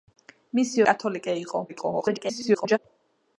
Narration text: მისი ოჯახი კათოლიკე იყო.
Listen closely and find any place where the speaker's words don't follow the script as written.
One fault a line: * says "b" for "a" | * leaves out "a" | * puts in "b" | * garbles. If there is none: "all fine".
* leaves out "ოჯახი"
* garbles